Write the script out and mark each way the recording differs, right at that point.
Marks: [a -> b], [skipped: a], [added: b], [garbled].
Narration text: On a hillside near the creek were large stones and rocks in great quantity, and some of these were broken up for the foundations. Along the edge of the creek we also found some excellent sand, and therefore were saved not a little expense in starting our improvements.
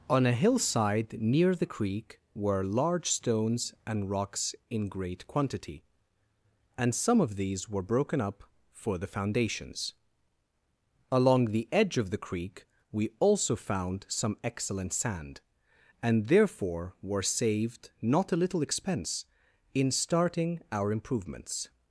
On a hillside near the creek were large stones and rocks in great quantity, and some of these were broken up for the foundations. Along the edge of the creek we also found some excellent sand, and therefore were saved not a little expense in starting our improvements.